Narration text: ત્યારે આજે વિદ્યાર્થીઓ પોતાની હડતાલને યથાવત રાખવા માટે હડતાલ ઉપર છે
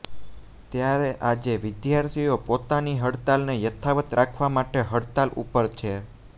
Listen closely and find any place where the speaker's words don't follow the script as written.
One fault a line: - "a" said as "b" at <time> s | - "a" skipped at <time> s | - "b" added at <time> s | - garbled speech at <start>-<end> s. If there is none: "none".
none